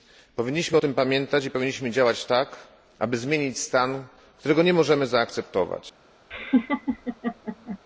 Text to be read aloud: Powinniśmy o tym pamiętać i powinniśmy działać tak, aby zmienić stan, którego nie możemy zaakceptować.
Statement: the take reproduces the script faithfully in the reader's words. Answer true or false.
true